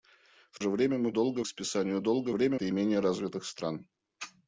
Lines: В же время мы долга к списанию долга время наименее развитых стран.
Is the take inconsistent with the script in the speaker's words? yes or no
no